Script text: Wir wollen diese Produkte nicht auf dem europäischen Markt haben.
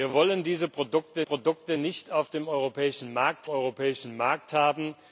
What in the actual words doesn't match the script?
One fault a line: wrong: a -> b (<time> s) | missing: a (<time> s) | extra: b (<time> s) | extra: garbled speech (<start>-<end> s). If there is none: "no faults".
extra: wir (0.0 s)
extra: Produkte (1.2 s)
extra: europäischen Markt (3.5 s)